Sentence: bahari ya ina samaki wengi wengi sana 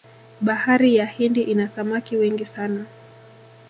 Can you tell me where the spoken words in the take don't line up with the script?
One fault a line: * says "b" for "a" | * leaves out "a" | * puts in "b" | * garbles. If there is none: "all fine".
* puts in "hindi"
* leaves out "wengi"